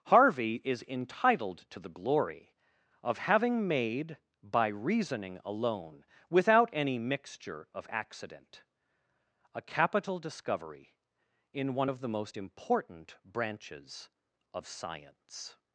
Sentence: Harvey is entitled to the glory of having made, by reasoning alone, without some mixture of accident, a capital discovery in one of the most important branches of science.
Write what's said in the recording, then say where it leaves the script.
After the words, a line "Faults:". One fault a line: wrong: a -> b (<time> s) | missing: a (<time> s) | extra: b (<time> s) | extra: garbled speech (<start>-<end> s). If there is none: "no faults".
Harvey is entitled to the glory of having made, by reasoning alone, without any mixture of accident, a capital discovery in one of the most important branches of science.
Faults:
wrong: some -> any (6.7 s)